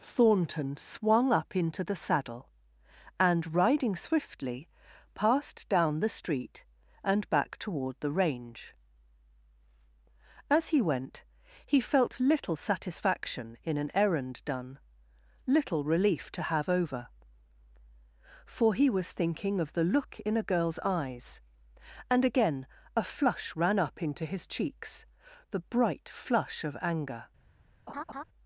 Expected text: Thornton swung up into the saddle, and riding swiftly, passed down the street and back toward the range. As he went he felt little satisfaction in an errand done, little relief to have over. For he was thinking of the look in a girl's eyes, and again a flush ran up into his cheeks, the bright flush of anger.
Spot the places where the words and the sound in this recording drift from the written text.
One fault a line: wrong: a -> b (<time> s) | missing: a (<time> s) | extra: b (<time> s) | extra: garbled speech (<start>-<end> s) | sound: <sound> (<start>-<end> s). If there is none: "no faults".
sound: laugh (27.9-28.2 s)